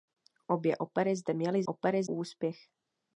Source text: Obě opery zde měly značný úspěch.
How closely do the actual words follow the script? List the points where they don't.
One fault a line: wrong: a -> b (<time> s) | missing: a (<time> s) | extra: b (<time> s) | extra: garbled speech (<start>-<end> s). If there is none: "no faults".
wrong: značný -> opery (1.6 s)